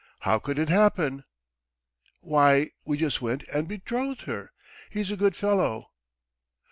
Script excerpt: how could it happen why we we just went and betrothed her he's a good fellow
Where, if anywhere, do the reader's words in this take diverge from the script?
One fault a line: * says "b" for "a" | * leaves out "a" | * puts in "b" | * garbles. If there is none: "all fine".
* leaves out "we"